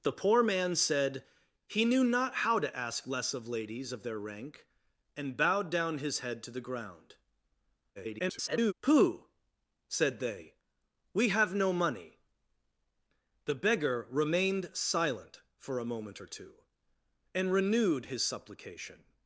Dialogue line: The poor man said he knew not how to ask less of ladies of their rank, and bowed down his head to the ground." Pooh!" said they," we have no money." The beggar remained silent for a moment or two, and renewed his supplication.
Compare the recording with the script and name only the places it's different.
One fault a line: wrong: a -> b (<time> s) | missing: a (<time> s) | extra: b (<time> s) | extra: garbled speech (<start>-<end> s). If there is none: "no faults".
extra: garbled speech (8.0-8.7 s)